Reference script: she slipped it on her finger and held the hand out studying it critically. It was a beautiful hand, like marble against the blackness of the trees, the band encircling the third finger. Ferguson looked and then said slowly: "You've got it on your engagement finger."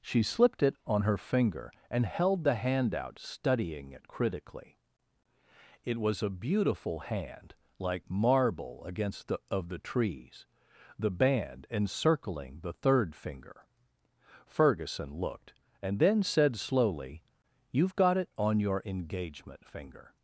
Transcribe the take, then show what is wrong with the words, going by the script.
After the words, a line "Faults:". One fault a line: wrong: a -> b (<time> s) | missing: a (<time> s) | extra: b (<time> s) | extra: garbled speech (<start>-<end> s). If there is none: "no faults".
she slipped it on her finger and held the hand out studying it critically. It was a beautiful hand, like marble against the of the trees, the band encircling the third finger. Ferguson looked and then said slowly: "You've got it on your engagement finger."
Faults:
missing: blackness (9.4 s)